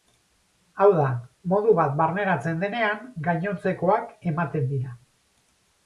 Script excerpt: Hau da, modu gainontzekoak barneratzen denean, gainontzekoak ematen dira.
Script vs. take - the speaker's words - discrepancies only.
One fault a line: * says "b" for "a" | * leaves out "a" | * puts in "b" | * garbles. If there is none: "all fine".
* says "bat" for "gainontzekoak"